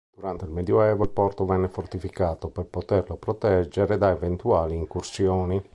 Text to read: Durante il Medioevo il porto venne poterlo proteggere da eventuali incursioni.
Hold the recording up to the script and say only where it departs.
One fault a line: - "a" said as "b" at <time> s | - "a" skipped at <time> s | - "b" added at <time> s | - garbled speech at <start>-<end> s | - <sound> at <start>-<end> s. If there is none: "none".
- "fortificato per" added at 1.7 s